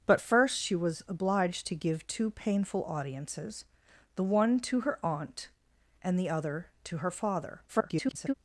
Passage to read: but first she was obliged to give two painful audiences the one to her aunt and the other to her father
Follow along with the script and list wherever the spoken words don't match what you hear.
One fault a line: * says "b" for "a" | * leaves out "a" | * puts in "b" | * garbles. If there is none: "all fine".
* garbles